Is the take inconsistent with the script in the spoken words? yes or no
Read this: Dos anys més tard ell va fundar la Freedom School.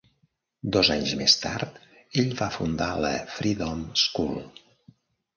no